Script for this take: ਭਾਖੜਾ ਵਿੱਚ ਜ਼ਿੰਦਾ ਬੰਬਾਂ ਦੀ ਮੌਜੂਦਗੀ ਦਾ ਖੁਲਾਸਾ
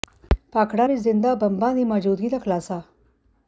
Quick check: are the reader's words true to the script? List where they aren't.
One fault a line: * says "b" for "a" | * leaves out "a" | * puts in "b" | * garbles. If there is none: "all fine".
all fine